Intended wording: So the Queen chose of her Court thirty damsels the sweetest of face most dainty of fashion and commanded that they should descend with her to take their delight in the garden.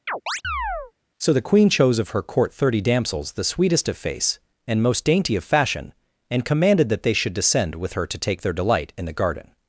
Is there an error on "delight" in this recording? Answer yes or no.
no